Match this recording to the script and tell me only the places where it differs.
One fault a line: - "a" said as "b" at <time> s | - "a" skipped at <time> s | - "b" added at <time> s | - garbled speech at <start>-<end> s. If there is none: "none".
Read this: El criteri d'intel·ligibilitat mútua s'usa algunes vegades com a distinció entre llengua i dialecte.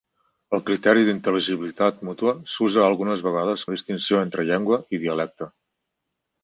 - "com" skipped at 3.7 s